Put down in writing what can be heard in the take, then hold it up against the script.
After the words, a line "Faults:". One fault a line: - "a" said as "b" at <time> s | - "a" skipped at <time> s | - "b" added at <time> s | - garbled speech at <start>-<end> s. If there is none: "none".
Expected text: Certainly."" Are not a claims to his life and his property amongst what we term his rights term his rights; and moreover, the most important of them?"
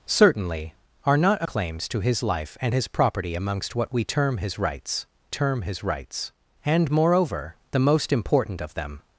Certainly."" Are not a claims to his life and his property amongst what we term his rights term his rights; and moreover, the most important of them?"
Faults:
none